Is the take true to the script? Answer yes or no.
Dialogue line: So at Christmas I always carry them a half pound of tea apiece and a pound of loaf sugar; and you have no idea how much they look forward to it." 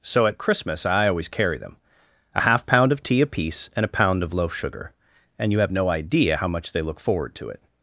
yes